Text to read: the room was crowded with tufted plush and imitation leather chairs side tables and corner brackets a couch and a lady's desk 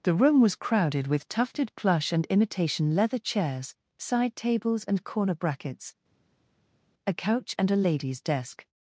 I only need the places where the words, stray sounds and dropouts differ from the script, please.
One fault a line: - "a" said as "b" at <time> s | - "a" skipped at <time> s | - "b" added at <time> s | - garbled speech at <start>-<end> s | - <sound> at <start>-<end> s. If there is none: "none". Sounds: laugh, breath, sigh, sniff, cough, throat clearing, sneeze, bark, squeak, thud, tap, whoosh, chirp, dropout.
none